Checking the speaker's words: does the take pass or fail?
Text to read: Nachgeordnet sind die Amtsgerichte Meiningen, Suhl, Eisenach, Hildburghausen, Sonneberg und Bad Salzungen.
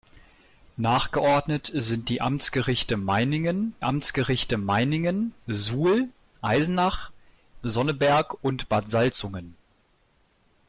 fail